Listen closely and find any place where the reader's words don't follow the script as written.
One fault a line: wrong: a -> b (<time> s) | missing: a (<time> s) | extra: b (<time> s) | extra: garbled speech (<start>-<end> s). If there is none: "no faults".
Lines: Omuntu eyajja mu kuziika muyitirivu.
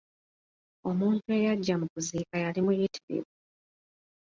extra: yali (2.4 s)